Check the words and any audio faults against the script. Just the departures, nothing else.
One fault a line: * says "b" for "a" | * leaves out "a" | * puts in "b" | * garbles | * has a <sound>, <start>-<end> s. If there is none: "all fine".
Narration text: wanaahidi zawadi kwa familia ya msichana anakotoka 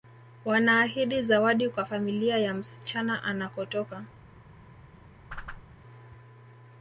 * has a whoosh, 5.3-5.6 s